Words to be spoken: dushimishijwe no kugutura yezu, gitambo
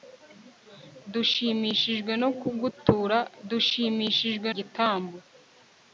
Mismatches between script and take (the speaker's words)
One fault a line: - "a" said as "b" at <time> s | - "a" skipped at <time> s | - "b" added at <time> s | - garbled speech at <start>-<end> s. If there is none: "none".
- "yezu" said as "dushimishijwe" at 3.5 s